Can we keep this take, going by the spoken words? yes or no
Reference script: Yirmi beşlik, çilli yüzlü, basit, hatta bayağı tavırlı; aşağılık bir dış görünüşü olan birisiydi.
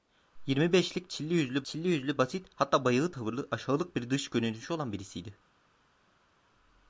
no